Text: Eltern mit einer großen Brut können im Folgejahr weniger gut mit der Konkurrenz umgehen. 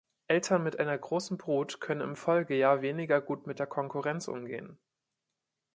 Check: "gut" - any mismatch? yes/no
no